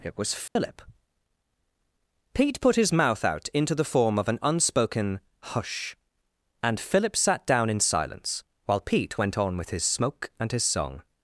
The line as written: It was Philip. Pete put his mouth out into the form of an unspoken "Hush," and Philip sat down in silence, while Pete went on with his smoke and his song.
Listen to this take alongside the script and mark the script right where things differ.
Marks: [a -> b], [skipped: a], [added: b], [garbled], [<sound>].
It was Philip. [dropout] Pete put his mouth out into the form of an unspoken "Hush," and Philip sat down in silence, while Pete went on with his smoke and his song.